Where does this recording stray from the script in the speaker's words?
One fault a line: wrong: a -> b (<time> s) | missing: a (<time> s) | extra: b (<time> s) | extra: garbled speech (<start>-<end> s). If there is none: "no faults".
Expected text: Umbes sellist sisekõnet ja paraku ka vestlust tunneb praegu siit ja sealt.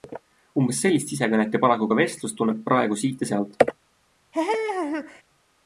no faults